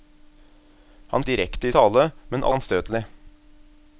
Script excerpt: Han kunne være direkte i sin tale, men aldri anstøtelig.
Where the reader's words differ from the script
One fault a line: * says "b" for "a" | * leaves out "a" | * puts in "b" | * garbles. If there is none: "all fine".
* leaves out "kunne være"
* leaves out "sin"
* leaves out "aldri"